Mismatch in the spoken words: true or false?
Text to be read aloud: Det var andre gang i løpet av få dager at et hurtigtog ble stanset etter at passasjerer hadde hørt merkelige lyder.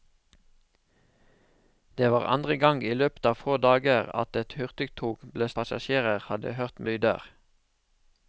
true